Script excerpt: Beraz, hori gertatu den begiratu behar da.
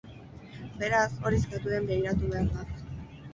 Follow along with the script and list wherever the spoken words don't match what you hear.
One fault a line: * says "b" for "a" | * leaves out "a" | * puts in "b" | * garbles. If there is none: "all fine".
all fine